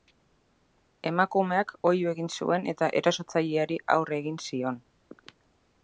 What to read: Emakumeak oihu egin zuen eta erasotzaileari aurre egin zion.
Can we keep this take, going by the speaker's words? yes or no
yes